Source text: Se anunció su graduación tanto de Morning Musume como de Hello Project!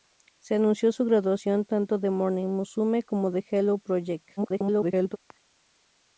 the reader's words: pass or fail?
fail